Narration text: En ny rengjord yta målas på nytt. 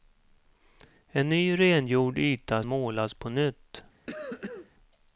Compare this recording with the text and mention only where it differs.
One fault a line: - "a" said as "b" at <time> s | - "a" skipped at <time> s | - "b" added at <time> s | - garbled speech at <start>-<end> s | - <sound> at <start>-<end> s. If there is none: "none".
- cough at 4.1-4.7 s